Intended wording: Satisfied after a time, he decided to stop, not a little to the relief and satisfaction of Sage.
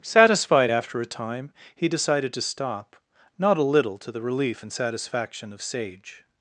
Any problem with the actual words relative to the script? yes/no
no